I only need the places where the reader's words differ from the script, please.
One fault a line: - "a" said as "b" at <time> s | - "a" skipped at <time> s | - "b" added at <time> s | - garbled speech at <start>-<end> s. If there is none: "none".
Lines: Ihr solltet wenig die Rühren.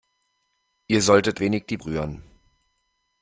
none